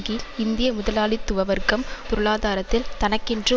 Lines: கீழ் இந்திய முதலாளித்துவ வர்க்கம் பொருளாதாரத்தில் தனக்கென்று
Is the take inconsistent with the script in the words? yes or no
no